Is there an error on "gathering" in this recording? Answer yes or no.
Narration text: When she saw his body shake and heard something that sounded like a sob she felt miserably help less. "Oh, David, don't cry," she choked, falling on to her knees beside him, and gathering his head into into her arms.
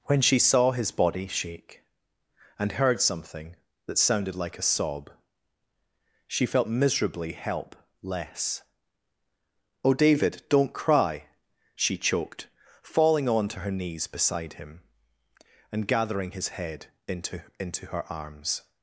no